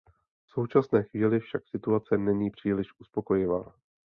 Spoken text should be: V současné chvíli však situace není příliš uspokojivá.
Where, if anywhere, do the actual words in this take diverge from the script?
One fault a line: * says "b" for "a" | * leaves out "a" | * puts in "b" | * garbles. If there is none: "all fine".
all fine